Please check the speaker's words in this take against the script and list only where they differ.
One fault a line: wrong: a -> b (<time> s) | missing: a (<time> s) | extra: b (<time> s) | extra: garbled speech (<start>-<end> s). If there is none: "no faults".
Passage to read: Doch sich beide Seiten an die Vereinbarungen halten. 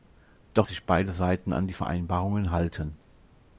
no faults